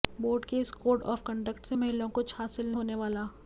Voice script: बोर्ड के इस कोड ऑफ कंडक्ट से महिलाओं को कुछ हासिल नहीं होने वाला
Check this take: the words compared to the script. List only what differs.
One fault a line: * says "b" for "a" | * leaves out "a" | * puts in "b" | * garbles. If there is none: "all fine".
* leaves out "को"
* leaves out "नहीं"